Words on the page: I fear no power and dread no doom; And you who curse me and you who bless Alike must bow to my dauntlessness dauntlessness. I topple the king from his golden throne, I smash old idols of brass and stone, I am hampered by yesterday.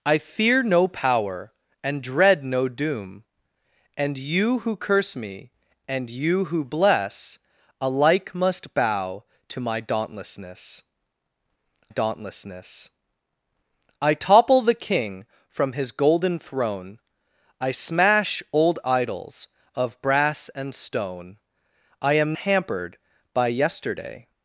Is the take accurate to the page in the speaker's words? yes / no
yes